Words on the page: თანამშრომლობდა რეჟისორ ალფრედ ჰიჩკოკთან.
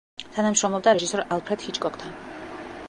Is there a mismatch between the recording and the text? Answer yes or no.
no